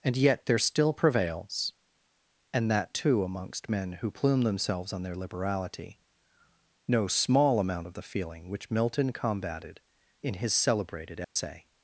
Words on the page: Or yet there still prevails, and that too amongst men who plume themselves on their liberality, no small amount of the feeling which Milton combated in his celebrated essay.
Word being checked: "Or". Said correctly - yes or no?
no